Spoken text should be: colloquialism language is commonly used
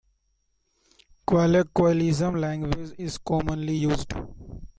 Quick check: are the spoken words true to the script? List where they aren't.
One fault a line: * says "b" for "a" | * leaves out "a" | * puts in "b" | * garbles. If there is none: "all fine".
all fine